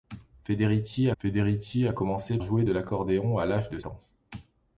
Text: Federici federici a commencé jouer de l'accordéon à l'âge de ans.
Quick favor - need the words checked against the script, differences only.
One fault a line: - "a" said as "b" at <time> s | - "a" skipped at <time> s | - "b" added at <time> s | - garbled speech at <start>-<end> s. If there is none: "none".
none